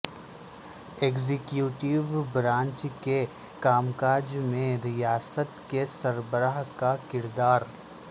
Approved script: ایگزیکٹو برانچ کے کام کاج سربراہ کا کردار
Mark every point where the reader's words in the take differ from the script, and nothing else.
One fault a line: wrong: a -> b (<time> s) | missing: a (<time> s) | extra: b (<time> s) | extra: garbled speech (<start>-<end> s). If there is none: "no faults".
extra: میں ریاست کے (4.4 s)